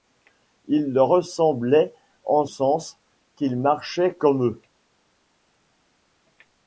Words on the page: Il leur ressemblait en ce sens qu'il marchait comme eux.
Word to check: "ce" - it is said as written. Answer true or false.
false